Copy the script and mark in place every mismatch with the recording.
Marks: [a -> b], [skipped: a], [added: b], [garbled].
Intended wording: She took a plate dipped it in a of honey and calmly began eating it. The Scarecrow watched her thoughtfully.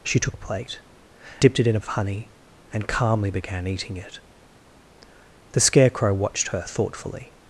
She took a plate dipped it in a of honey and calmly began eating it. The Scarecrow watched her thoughtfully.